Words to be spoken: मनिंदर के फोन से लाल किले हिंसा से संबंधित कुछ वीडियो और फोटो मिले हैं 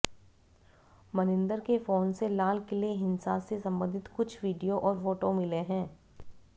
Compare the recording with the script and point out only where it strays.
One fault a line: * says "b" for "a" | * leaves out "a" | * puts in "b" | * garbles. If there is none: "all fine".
all fine